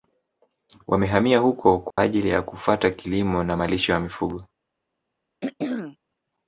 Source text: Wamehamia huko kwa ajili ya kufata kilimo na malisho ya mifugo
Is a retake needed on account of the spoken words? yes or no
no